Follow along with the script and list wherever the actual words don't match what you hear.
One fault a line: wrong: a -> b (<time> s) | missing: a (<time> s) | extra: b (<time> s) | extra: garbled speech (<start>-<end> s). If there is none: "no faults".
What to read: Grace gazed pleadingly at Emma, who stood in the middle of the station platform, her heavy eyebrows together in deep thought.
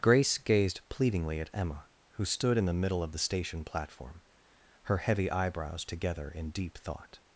no faults